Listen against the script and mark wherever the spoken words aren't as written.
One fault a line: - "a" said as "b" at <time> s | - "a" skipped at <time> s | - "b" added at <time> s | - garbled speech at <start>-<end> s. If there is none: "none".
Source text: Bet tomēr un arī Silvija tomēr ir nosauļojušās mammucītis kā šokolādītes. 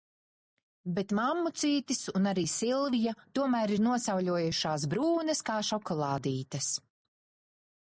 - "tomēr" said as "mammucītis" at 1.2 s
- "mammucītis" said as "brūnas" at 4.9 s